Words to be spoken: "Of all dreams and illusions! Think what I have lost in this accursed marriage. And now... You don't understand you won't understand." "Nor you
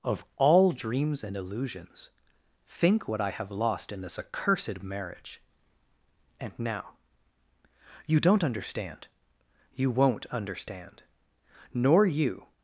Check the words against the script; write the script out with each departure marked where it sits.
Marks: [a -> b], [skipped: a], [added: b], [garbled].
"Of all dreams and illusions! Think what I have lost in this accursed marriage. And now... You don't understand you won't understand." "Nor you